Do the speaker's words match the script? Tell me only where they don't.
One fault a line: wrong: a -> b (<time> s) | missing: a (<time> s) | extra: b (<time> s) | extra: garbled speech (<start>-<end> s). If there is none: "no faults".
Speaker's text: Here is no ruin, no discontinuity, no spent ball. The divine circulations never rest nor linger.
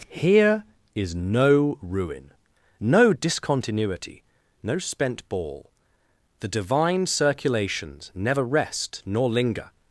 no faults